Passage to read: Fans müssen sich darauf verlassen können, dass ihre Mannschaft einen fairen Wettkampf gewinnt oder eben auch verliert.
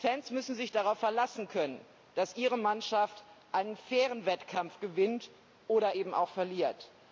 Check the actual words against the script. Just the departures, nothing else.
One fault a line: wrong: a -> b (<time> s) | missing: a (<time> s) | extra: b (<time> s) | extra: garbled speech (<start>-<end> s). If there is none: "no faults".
no faults